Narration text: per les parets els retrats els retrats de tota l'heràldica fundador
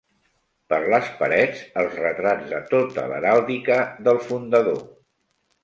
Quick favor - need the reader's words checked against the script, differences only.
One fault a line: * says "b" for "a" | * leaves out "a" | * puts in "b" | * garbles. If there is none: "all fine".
* leaves out "els retrats"
* puts in "del"